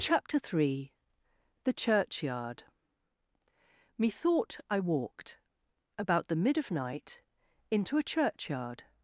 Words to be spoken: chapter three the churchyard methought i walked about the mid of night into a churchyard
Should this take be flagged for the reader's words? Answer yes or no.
no